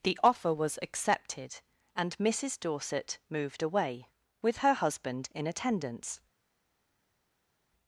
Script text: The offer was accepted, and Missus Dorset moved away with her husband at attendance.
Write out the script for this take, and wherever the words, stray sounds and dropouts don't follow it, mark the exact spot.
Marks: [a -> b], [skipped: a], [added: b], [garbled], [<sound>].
The offer was accepted, and Missus Dorset moved away with her husband [at -> in] attendance.